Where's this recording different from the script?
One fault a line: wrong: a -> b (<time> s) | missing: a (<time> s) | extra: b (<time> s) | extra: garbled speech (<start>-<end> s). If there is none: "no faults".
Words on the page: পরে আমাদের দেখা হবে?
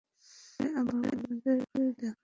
no faults